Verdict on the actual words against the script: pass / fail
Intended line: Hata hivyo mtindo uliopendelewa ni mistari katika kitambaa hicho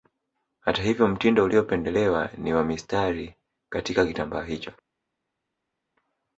fail